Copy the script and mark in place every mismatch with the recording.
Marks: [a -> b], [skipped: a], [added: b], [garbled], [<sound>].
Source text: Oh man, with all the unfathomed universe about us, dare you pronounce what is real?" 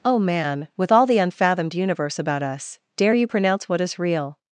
Oh man, with all the unfathomed universe about us, dare you pronounce what is real?"